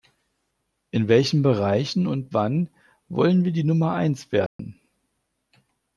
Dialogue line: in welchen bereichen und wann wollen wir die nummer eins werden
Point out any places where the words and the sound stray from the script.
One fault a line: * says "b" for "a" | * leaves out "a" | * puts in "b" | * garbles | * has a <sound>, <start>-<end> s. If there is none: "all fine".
* has a dropout, 4.5-4.6 s